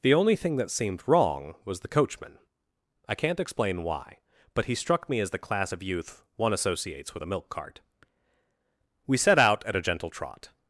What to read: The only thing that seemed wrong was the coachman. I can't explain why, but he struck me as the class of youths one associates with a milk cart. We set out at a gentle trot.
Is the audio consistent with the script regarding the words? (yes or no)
no